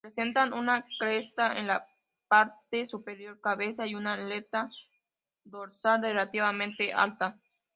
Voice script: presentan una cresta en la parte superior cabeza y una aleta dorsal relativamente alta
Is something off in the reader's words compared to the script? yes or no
no